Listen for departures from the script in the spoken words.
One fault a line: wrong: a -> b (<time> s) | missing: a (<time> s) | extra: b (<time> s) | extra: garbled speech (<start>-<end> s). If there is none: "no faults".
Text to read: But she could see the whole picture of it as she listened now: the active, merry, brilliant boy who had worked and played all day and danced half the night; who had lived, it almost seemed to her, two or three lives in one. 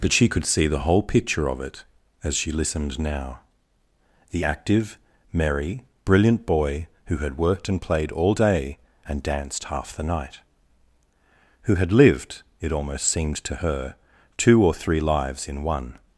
no faults